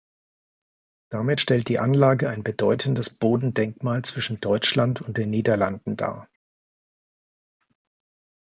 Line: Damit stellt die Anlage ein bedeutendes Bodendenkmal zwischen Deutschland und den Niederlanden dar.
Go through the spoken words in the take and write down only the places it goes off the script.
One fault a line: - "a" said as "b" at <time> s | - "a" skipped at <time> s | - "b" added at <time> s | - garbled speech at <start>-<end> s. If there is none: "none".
none